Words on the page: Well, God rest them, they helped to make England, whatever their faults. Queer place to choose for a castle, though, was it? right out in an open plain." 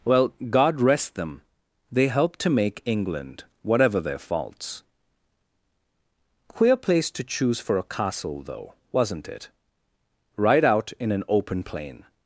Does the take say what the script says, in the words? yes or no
no